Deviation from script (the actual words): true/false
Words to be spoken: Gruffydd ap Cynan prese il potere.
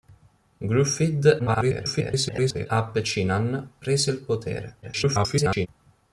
true